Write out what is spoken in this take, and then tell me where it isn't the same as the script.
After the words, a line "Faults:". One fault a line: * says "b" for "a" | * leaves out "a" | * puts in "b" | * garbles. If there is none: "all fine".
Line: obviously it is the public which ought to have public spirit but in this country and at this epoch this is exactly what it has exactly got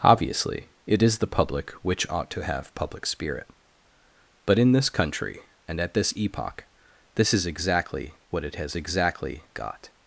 obviously it is the public which ought to have public spirit but in this country and at this epoch this is exactly what it has exactly got
Faults:
all fine